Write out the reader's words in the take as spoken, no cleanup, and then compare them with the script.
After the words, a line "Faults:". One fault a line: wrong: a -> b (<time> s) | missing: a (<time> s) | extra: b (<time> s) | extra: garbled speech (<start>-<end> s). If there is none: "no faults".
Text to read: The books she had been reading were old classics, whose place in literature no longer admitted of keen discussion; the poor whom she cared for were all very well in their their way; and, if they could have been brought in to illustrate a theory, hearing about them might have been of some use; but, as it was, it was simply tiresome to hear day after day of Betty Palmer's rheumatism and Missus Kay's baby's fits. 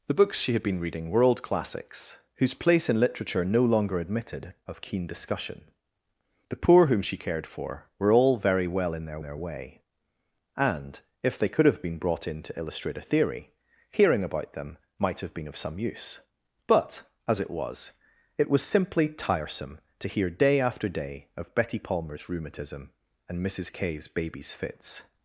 The books she had been reading were old classics, whose place in literature no longer admitted of keen discussion; the poor whom she cared for were all very well in their their way; and, if they could have been brought in to illustrate a theory, hearing about them might have been of some use; but, as it was, it was simply tiresome to hear day after day of Betty Palmer's rheumatism and Missus Kay's baby's fits.
Faults:
no faults